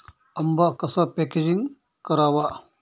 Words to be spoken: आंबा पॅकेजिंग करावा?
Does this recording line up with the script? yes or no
no